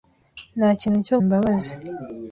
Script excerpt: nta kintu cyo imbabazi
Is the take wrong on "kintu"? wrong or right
right